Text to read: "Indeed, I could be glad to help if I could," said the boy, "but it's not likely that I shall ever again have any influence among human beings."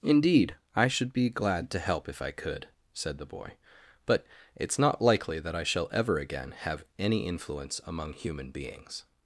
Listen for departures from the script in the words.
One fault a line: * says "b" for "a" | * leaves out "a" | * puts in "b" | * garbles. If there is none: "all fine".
* says "should" for "could"